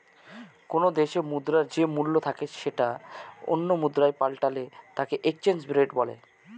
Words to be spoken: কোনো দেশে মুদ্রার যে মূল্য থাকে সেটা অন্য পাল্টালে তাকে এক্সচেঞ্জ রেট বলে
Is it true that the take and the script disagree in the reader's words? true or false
true